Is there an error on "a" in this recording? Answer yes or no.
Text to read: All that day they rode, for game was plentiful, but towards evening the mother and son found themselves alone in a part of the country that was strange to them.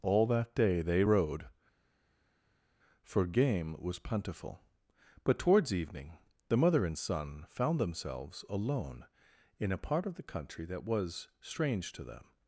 no